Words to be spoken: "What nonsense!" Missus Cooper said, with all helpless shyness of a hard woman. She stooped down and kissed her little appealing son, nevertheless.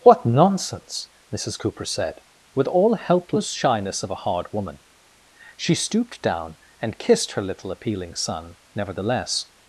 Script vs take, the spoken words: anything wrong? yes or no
no